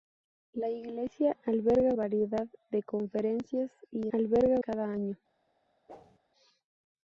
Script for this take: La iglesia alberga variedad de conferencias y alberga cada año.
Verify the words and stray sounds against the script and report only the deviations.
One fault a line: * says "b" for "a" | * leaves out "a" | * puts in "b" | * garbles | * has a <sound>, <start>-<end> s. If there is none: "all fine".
* has a whoosh, 5.9-6.2 s